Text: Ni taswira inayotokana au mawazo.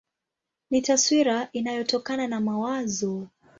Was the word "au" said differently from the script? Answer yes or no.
yes